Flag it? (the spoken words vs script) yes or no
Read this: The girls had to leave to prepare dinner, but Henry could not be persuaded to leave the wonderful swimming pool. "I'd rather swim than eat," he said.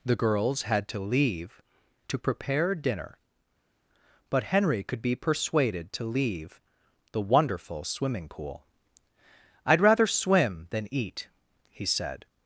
yes